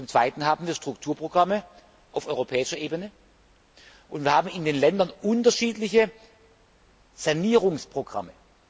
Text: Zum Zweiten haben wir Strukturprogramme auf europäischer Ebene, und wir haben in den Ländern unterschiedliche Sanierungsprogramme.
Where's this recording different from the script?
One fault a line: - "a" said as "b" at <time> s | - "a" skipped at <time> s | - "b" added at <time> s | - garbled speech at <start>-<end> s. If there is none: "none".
none